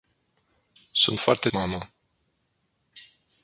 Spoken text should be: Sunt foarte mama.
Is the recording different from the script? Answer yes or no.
no